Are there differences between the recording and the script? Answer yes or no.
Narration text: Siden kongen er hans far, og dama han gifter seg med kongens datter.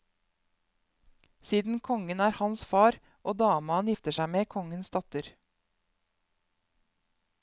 no